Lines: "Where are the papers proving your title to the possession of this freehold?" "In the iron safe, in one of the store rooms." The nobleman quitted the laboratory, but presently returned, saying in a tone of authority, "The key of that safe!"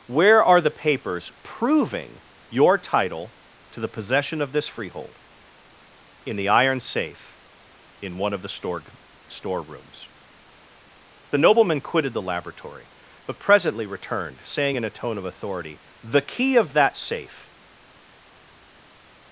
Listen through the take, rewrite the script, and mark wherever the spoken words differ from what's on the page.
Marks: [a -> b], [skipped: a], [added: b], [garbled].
"Where are the papers proving your title to the possession of this freehold?" "In the iron safe, in one of the store [added: store] rooms." The nobleman quitted the laboratory, but presently returned, saying in a tone of authority, "The key of that safe!"